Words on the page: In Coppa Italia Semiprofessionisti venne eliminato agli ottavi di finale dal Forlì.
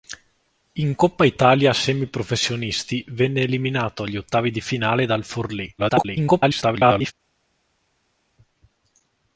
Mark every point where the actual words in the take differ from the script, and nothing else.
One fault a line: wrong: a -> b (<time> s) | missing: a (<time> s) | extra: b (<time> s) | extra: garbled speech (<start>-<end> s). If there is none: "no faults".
extra: garbled speech (5.8-7.1 s)